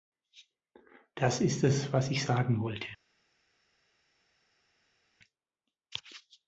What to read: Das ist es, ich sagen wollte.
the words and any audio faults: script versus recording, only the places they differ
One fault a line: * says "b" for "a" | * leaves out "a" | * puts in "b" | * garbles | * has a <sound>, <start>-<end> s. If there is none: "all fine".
* puts in "was"